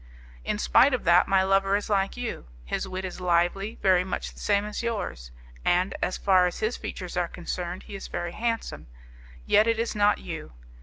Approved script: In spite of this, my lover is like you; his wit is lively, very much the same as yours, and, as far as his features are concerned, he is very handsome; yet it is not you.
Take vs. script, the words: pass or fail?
fail